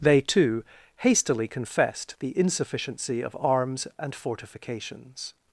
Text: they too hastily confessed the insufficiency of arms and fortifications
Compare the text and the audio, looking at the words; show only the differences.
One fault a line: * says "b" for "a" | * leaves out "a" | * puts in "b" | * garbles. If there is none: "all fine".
all fine